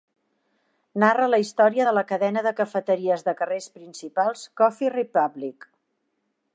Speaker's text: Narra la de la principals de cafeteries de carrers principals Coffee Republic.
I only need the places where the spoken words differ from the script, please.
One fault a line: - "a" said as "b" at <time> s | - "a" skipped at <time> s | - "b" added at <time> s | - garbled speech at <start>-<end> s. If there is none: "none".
- "història" added at 1.4 s
- "principals" said as "cadena" at 2.1 s